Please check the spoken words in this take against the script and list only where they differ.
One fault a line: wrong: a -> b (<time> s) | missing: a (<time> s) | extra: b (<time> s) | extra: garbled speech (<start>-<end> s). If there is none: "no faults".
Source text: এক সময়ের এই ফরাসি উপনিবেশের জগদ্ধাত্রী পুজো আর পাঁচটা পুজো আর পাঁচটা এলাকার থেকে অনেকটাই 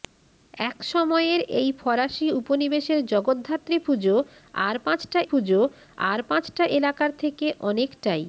no faults